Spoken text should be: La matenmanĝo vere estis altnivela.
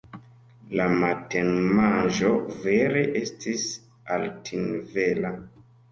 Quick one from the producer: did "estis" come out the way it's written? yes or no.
yes